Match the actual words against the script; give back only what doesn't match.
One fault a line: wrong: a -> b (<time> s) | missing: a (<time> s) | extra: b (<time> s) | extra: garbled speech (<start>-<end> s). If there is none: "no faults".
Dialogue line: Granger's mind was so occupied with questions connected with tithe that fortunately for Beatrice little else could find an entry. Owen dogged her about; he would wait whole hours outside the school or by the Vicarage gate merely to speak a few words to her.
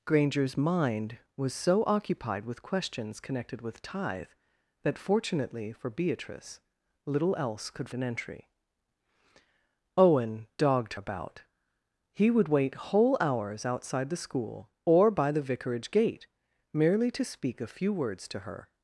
missing: find (7.9 s)
missing: her (10.9 s)